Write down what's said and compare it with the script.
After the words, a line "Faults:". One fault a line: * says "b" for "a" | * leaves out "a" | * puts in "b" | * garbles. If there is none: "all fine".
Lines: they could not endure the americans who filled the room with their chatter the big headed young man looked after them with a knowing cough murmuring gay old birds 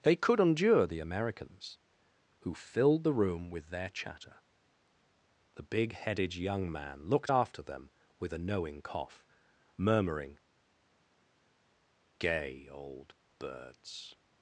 they could endure the americans who filled the room with their chatter the big headed young man looked after them with a knowing cough murmuring gay old birds
Faults:
* leaves out "not"